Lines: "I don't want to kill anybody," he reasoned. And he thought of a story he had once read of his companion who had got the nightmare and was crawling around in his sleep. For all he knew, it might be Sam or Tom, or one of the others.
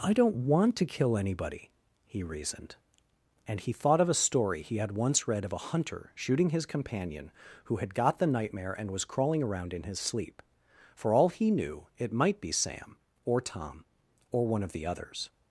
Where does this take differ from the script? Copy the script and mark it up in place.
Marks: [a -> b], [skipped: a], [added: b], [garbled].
"I don't want to kill anybody," he reasoned. And he thought of a story he had once read of [added: a hunter shooting] his companion who had got the nightmare and was crawling around in his sleep. For all he knew, it might be Sam or Tom, or one of the others.